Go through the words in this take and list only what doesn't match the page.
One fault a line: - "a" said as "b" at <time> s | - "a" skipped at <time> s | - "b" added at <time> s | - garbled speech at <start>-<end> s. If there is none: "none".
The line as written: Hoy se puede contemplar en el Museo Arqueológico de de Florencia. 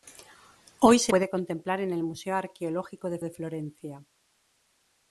none